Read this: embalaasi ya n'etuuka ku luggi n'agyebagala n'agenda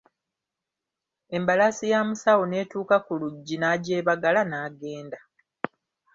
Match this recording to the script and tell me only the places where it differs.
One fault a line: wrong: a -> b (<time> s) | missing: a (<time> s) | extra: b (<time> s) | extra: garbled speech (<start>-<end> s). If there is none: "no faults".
extra: musawo (2.1 s)